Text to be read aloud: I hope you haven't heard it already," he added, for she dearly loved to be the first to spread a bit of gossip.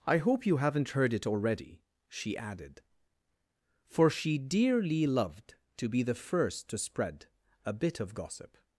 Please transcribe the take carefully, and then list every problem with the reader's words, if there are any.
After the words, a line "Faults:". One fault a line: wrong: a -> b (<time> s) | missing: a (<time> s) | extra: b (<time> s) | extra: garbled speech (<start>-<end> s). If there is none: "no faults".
I hope you haven't heard it already," she added, for she dearly loved to be the first to spread a bit of gossip.
Faults:
wrong: he -> she (2.1 s)